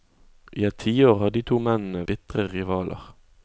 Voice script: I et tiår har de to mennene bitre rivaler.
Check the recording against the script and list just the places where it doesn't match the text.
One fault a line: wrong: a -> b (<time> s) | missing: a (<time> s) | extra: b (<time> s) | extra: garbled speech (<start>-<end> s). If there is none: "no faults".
no faults